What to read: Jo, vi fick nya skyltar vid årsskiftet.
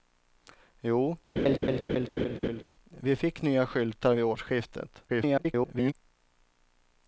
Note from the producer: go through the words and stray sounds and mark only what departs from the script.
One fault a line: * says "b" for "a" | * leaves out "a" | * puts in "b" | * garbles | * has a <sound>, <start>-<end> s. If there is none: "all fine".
* has a laugh, 1.4-2.6 s
* garbles